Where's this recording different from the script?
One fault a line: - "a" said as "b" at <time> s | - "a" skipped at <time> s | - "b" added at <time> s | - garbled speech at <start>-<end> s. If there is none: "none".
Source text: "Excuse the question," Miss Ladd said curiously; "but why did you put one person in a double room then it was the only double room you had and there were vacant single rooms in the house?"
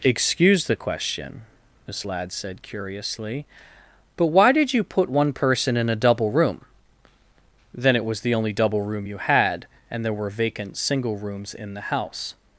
none